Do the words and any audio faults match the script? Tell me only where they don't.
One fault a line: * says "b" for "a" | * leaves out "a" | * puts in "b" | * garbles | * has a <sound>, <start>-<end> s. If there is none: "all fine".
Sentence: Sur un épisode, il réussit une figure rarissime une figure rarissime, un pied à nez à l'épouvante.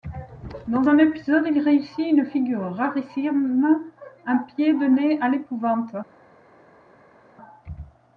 * says "Dans" for "Sur"
* leaves out "une figure rarissime"
* says "de" for "à"